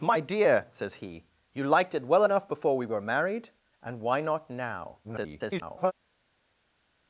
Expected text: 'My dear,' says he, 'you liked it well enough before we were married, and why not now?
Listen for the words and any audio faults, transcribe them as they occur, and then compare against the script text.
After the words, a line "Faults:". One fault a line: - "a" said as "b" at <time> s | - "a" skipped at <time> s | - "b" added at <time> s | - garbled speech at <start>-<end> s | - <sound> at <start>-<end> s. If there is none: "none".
'My dear,' says he, 'you liked it well enough before we were married, and why not now? [garbled]
Faults:
- garbled speech at 5.0-5.9 s